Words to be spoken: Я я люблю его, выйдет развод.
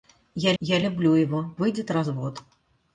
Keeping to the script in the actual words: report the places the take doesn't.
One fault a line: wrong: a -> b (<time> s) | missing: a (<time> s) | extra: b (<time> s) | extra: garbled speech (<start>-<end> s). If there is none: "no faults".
no faults